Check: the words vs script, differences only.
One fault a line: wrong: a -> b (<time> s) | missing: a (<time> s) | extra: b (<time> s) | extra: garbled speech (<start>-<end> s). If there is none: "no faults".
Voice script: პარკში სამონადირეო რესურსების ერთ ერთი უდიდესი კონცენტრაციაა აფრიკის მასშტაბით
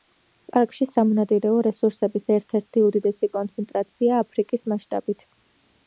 no faults